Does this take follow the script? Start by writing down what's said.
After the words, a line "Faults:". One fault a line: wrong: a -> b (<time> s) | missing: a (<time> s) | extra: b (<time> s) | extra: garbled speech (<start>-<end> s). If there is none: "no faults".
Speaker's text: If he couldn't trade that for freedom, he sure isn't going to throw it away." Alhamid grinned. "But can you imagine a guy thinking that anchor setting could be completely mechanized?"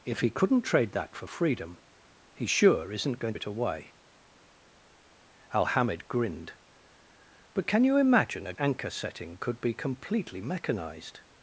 If he couldn't trade that for freedom, he sure isn't going it away." Alhamid grinned. "But can you imagine a anchor setting could be completely mechanized?"
Faults:
missing: to throw (3.3 s)
missing: guy thinking that (8.5 s)